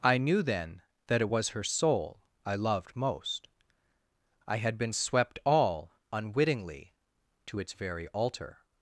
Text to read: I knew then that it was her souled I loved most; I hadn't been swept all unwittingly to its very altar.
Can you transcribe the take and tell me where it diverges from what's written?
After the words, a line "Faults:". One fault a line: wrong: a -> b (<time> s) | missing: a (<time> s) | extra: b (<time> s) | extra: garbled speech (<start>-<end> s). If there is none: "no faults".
I knew then that it was her soul I loved most; I had been swept all unwittingly to its very altar.
Faults:
wrong: souled -> soul (1.6 s)
wrong: hadn't -> had (4.6 s)